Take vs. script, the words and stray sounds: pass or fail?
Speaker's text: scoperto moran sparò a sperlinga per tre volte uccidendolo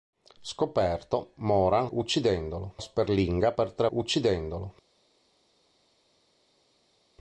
fail